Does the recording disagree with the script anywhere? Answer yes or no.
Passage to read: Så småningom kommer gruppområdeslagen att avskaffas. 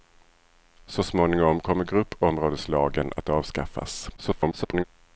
yes